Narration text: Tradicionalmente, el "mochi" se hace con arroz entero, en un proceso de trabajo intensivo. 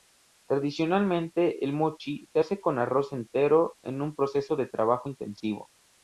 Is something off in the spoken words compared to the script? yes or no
no